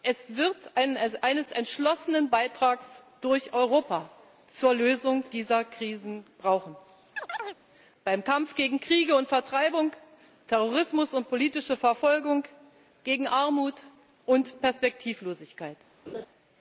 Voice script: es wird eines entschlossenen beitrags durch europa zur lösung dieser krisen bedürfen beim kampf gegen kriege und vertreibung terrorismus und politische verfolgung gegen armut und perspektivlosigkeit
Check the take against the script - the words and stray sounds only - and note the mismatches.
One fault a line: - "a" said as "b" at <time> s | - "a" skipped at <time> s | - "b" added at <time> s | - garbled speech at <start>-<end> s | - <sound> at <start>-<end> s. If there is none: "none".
- chirp at 7.2-7.6 s
- laugh at 16.1-16.3 s